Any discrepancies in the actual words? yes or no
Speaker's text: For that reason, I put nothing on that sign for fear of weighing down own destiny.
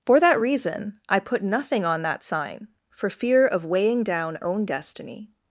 no